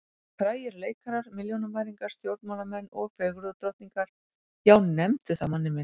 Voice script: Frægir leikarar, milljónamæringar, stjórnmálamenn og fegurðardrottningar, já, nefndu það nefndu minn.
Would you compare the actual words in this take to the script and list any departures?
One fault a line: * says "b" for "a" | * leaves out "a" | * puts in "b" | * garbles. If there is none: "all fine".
* says "manni" for "nefndu"